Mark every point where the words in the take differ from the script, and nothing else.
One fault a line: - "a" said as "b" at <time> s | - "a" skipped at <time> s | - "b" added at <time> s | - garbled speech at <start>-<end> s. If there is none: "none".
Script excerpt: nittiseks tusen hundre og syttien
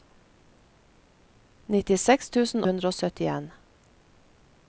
none